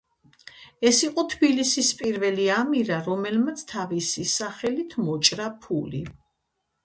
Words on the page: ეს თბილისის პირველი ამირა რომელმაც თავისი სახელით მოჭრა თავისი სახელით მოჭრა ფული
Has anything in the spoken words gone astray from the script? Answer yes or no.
yes